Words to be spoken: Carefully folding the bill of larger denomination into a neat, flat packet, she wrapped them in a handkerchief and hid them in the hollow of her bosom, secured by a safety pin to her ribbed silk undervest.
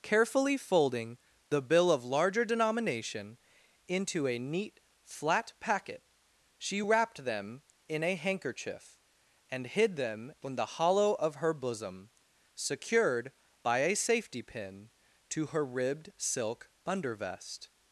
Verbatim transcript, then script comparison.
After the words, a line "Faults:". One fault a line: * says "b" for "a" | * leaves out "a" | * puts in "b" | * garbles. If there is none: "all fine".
Carefully folding the bill of larger denomination into a neat, flat packet, she wrapped them in a handkerchief and hid them in the hollow of her bosom, secured by a safety pin to her ribbed silk undervest.
Faults:
all fine